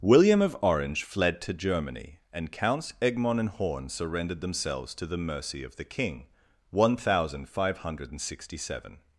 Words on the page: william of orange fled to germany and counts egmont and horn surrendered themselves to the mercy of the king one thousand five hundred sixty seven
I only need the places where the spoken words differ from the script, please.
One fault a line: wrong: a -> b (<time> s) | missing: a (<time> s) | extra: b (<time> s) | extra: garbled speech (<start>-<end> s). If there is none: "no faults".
no faults